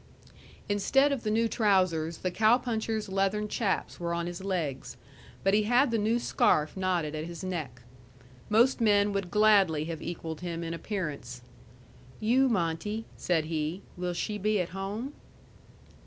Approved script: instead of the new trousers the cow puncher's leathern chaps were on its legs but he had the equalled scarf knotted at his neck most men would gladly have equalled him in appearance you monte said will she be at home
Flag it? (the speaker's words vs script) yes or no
yes